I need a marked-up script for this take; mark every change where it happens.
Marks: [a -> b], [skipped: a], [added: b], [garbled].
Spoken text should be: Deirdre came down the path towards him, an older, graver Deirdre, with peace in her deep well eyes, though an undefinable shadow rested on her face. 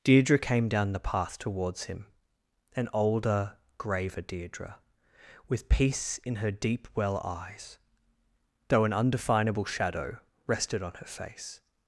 Deirdre came down the path towards him, an older, graver Deirdre, with peace in her deep well eyes, though an undefinable shadow rested on her face.